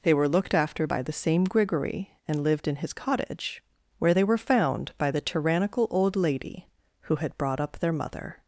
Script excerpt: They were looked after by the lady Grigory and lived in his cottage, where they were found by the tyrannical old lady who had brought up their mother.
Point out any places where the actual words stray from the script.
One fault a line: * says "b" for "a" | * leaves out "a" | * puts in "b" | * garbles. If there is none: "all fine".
* says "same" for "lady"